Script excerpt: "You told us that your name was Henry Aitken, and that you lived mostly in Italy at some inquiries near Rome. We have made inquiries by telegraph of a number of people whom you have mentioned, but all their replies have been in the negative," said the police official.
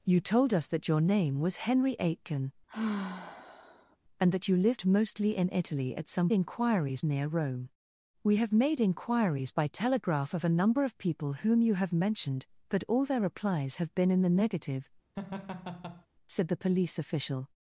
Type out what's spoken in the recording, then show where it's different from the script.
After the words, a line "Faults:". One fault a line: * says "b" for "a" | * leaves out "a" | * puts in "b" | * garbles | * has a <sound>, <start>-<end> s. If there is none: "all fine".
"You told us that your name was Henry Aitken, and that you lived mostly in Italy at some inquiries near Rome. We have made inquiries by telegraph of a number of people whom you have mentioned, but all their replies have been in the negative," said the police official.
Faults:
* has a sigh, 2.7-4.0 s
* has a laugh, 15.2-16.1 s